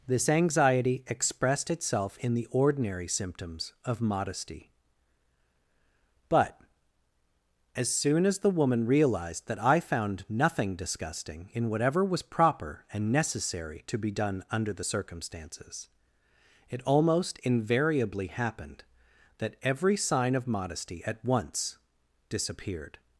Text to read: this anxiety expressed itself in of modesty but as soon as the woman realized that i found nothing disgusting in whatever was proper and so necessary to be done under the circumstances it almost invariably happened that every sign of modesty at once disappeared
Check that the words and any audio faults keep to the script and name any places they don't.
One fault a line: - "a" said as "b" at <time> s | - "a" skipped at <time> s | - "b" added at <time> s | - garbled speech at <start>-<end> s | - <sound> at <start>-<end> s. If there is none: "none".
- "the ordinary symptoms" added at 2.3 s
- "so" skipped at 13.1 s